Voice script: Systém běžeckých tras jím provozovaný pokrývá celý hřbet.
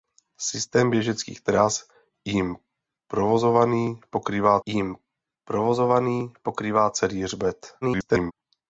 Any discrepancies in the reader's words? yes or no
yes